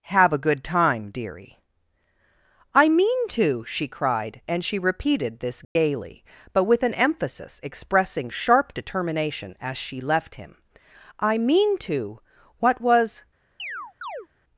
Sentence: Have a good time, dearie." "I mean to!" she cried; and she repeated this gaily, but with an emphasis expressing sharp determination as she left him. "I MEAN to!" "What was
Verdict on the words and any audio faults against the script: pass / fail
fail